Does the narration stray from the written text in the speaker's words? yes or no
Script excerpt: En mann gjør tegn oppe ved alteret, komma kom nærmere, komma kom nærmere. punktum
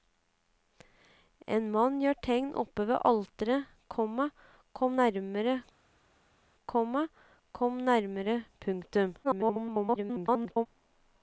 yes